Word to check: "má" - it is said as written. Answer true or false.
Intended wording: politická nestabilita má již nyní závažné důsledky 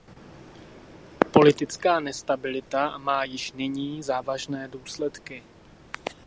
true